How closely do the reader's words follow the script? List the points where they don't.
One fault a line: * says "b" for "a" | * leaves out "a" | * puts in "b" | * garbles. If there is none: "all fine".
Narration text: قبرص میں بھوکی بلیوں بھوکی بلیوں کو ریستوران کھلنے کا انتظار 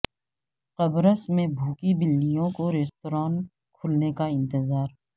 * leaves out "بھوکی بلیوں"